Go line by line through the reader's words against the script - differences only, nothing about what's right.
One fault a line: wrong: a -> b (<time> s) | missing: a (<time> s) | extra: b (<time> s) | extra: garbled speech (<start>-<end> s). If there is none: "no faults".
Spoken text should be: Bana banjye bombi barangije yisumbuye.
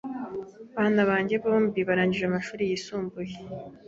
extra: amashuri (2.3 s)